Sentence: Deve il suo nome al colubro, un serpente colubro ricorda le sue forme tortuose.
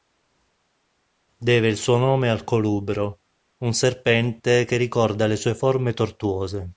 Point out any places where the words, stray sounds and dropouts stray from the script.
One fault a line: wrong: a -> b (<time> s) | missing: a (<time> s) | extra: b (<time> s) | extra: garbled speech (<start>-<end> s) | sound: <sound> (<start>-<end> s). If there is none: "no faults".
wrong: colubro -> che (4.6 s)